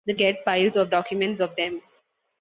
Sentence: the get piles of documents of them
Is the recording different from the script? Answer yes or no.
no